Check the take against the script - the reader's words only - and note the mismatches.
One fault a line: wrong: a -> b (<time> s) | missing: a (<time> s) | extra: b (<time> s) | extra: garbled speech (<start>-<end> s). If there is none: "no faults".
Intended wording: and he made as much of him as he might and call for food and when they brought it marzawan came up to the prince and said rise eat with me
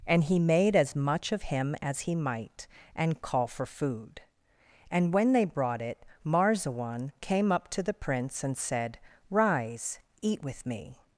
no faults